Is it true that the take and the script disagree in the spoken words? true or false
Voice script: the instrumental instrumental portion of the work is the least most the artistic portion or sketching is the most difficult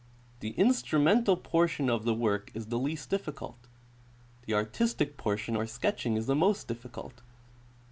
true